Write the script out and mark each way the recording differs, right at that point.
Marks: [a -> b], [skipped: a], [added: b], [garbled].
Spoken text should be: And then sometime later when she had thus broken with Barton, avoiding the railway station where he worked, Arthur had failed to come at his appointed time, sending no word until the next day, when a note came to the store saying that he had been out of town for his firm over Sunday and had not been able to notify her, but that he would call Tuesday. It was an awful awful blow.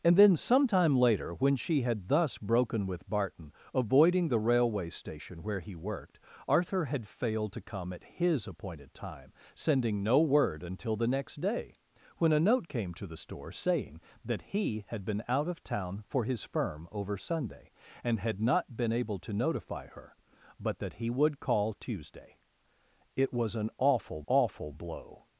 And then sometime later when she had thus broken with Barton, avoiding the railway station where he worked, Arthur had failed to come at his appointed time, sending no word until the next day, when a note came to the store saying that he had been out of town for his firm over Sunday and had not been able to notify her, but that he would call Tuesday. It was an awful awful blow.